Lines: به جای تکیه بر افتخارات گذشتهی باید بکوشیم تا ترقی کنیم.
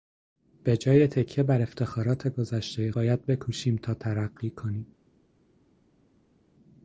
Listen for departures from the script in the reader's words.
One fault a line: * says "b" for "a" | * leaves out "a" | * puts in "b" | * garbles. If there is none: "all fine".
all fine